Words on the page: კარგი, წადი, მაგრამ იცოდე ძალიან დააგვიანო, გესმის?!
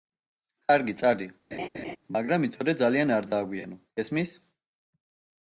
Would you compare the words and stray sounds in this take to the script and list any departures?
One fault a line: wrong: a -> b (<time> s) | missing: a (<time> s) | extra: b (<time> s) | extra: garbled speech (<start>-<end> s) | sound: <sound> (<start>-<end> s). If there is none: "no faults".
sound: laugh (1.5-2.0 s)
extra: არ (3.2 s)